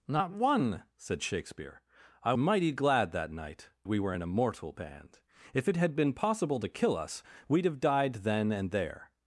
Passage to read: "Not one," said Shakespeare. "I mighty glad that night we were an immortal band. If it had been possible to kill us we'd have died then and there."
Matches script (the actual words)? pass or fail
pass